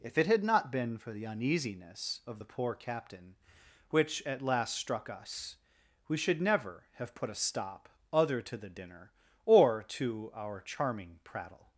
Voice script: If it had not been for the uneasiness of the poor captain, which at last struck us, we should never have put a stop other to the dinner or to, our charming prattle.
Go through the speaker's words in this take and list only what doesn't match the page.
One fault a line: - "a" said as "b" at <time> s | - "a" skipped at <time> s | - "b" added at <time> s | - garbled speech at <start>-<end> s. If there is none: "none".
none